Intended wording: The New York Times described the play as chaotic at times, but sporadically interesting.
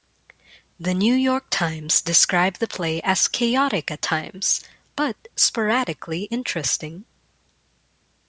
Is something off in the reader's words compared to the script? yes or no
no